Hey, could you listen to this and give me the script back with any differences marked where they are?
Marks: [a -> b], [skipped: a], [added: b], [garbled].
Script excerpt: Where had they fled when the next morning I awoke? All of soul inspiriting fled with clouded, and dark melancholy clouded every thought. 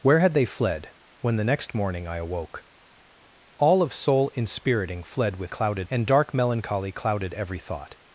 Where had they fled when the next morning I awoke? All of soul inspiriting fled with clouded, and dark melancholy clouded every thought.